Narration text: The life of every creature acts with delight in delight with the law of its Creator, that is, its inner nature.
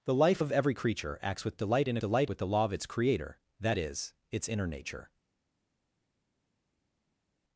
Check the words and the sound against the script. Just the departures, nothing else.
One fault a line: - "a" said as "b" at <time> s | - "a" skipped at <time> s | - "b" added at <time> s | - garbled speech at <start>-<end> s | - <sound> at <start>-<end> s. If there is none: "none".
none